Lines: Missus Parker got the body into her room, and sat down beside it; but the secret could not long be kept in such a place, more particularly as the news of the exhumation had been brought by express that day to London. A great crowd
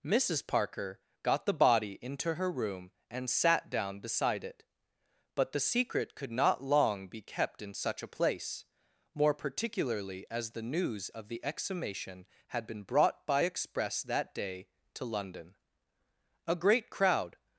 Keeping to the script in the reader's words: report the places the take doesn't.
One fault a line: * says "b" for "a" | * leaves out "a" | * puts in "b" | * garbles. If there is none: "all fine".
all fine